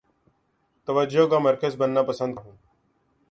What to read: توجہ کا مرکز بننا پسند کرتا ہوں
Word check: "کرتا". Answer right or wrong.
wrong